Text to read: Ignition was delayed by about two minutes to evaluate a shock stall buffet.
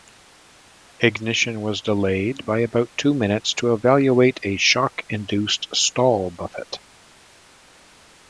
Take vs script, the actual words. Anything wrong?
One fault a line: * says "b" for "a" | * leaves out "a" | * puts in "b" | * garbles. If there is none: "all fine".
* puts in "induced"